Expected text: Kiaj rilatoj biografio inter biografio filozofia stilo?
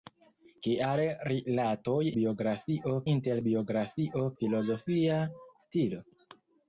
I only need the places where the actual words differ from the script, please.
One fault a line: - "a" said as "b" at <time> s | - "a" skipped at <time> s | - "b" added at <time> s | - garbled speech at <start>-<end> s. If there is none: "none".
none